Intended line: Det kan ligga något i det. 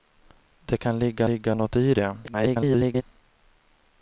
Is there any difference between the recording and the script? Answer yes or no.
yes